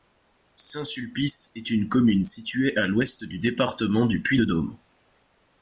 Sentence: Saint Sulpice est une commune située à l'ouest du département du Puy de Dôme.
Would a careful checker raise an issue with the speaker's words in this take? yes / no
no